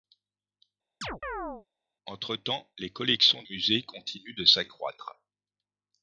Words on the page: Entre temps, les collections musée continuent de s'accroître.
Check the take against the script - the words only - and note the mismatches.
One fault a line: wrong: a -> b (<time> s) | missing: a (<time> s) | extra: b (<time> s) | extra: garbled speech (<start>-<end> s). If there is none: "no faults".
no faults